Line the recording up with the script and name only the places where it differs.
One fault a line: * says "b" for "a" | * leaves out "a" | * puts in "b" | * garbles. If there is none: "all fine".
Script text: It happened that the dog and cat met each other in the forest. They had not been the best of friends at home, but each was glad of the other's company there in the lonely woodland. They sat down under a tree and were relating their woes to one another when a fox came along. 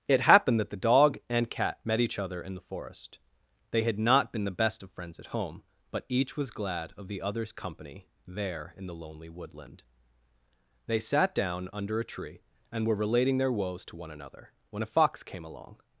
all fine